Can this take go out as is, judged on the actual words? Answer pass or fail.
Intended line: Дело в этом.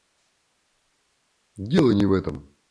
fail